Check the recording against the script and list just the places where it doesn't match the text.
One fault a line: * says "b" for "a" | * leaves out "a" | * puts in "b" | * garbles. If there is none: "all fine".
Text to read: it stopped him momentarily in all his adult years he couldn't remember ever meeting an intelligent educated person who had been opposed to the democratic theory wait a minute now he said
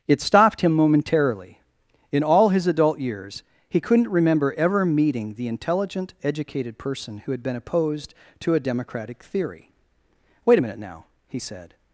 * says "the" for "an"
* says "a" for "the"